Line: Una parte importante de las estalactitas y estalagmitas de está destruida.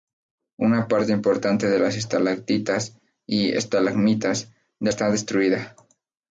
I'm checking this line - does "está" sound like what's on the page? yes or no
yes